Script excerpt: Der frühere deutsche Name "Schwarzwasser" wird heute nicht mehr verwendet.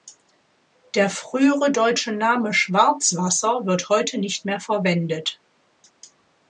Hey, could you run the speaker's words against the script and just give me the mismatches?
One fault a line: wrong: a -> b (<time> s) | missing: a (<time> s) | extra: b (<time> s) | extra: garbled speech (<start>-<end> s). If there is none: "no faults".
no faults